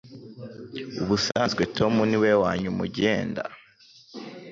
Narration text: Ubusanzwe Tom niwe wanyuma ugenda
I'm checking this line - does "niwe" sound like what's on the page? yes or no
yes